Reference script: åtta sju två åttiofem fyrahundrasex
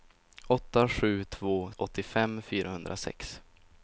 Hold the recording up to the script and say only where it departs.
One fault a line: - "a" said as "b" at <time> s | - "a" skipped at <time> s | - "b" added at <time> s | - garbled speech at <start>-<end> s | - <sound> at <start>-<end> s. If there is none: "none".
none